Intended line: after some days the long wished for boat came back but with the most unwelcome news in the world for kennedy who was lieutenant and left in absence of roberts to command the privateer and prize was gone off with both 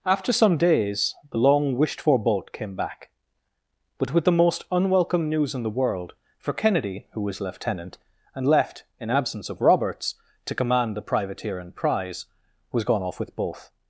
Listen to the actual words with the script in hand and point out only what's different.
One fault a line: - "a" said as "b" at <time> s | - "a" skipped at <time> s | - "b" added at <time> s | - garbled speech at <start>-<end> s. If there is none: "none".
none